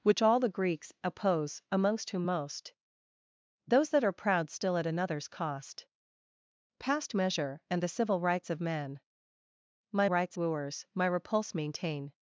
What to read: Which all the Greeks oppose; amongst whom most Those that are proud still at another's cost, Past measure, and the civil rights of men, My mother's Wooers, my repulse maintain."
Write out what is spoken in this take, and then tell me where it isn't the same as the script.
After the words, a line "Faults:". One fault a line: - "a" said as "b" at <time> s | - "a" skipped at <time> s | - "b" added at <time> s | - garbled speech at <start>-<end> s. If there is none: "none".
Which all the Greeks oppose; amongst whom most Those that are proud still at another's cost, Past measure, and the civil rights of men, My rights Wooers, my repulse maintain."
Faults:
- "mother's" said as "rights" at 10.1 s